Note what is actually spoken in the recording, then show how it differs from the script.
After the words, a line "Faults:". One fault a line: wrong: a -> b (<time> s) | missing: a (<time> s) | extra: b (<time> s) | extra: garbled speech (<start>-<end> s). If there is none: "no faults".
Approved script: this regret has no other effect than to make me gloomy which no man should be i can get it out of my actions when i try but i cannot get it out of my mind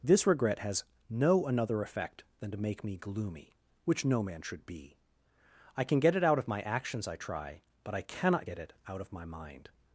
this regret has no another effect than to make me gloomy which no man should be i can get it out of my actions i try but i cannot get it out of my mind
Faults:
wrong: other -> another (1.4 s)
missing: when (7.1 s)